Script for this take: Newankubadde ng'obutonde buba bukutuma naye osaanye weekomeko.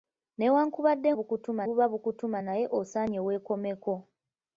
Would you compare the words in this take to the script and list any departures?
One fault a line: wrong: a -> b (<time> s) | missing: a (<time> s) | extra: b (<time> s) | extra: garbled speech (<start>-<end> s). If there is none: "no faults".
wrong: ng'obutonde -> bukutuma (1.2 s)